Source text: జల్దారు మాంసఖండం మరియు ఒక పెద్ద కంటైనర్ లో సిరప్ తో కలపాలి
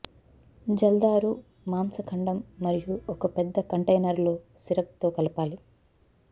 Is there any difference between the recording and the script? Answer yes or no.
no